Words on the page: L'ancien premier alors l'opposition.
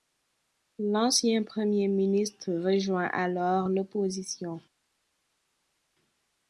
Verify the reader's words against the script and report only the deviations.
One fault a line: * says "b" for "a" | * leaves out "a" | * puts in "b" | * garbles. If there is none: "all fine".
* puts in "ministre rejoint"